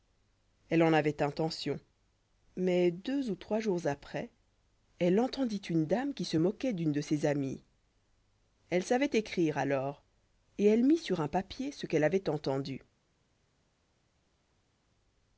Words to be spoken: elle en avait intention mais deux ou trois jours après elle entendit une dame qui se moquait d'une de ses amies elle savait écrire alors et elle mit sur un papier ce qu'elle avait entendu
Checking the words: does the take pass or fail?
pass